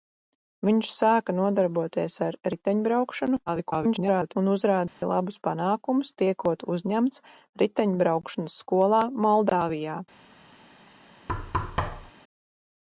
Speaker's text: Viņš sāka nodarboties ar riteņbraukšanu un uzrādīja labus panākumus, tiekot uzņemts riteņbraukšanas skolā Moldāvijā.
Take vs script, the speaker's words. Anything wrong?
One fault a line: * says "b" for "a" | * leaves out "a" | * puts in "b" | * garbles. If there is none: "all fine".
* garbles